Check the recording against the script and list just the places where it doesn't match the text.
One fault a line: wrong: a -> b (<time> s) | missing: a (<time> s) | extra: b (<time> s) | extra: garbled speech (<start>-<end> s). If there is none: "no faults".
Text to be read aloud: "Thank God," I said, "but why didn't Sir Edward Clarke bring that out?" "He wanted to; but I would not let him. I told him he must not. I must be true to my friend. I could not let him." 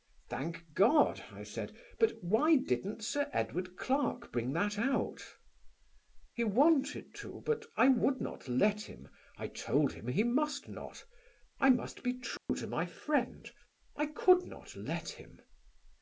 no faults